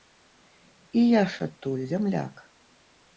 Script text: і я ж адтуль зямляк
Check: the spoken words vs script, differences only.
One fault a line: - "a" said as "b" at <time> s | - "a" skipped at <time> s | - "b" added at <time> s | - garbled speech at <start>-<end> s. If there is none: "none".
none